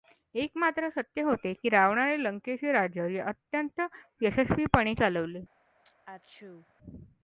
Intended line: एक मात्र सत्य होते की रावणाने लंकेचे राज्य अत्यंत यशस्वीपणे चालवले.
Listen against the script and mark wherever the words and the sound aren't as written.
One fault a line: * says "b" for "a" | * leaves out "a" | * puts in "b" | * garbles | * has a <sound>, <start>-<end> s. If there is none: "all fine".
* has a sneeze, 5.8-6.7 s